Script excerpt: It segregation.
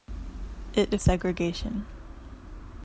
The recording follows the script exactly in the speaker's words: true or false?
true